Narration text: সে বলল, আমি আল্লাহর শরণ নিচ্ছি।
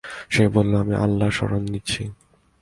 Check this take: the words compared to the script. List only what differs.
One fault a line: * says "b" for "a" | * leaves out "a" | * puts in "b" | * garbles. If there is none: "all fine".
all fine